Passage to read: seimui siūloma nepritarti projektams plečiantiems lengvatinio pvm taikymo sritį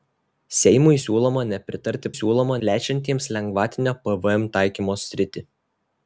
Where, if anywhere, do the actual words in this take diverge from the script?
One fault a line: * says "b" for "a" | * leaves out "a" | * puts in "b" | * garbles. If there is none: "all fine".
* says "siūloma" for "projektams"